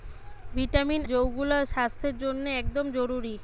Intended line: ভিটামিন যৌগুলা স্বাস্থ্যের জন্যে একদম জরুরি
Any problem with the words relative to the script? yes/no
no